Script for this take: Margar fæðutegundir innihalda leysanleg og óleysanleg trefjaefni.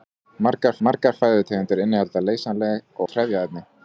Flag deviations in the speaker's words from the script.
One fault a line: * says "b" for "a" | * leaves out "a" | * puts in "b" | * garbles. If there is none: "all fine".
* puts in "margar"
* leaves out "og óleysanleg"